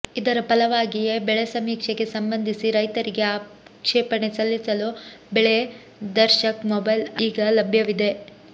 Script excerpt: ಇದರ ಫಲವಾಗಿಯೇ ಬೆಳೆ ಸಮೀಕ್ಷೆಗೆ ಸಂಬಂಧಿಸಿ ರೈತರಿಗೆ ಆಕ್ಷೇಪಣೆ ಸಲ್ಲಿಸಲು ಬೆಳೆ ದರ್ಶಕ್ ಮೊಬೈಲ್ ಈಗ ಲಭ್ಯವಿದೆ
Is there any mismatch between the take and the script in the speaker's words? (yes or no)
no